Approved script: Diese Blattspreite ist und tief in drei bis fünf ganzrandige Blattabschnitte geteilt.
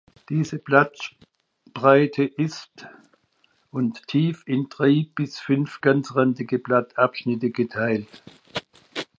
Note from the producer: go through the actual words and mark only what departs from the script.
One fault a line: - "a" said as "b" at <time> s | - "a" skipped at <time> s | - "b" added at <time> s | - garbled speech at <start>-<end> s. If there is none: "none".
none